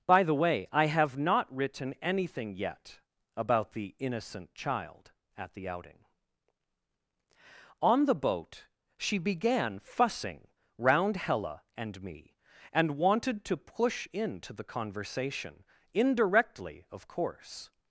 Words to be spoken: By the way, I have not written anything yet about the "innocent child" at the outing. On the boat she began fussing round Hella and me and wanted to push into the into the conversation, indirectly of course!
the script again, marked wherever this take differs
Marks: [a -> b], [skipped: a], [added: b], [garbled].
By the way, I have not written anything yet about the "innocent child" at the outing. On the boat she began fussing round Hella and me and wanted to push into the [skipped: into the] conversation, indirectly of course!